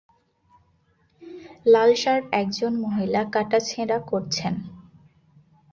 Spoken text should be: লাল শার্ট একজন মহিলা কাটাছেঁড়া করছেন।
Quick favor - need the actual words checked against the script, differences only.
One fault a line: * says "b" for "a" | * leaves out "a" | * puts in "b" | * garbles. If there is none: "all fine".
all fine